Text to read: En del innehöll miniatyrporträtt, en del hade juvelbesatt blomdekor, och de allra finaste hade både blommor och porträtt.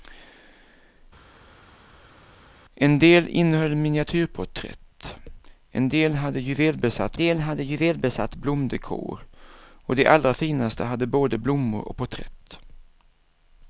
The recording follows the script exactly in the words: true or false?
false